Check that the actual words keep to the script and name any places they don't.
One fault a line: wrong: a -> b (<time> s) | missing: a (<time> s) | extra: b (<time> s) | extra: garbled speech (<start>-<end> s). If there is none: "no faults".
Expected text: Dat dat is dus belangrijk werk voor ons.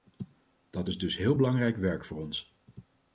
missing: dat (0.9 s)
extra: heel (1.2 s)